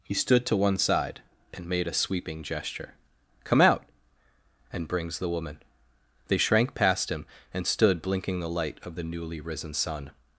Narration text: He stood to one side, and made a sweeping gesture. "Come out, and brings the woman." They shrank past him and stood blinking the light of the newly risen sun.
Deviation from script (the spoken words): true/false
false